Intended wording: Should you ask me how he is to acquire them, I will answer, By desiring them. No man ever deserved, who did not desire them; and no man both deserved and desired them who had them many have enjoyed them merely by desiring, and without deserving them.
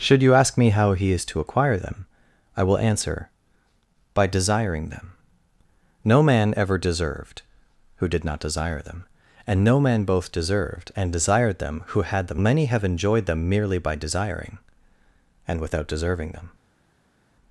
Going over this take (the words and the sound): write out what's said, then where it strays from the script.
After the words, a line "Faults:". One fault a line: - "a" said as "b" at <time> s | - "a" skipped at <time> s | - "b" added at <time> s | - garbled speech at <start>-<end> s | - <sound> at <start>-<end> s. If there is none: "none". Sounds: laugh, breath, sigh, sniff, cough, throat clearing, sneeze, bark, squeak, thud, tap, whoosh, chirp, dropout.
Should you ask me how he is to acquire them, I will answer, By desiring them. No man ever deserved, who did not desire them; and no man both deserved and desired them who had them many have enjoyed them merely by desiring, and without deserving them.
Faults:
none